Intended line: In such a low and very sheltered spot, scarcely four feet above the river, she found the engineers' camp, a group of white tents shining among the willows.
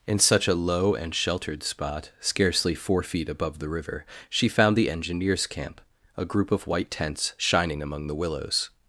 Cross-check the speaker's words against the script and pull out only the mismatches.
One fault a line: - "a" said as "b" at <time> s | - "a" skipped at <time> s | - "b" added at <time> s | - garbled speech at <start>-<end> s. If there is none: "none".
- "very" skipped at 1.1 s